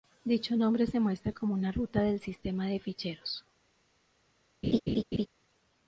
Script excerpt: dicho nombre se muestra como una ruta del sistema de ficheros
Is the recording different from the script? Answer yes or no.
no